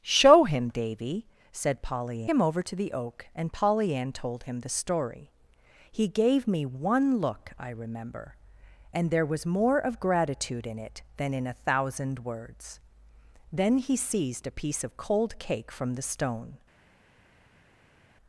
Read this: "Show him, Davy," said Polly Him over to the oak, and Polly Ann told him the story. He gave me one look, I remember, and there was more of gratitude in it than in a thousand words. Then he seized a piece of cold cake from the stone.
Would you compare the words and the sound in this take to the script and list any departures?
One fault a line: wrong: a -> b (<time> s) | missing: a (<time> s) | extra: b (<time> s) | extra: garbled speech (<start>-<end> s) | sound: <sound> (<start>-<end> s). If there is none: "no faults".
no faults